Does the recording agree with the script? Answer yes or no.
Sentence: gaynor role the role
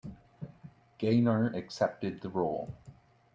no